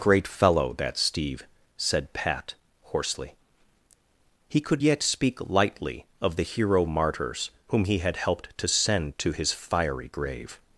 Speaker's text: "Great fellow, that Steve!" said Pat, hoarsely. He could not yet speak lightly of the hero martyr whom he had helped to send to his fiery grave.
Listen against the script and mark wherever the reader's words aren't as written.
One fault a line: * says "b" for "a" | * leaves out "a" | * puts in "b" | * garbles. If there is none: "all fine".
* leaves out "not"
* says "martyrs" for "martyr"